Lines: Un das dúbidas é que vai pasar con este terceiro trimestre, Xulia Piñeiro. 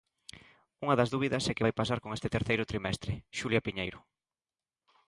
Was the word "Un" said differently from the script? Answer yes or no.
yes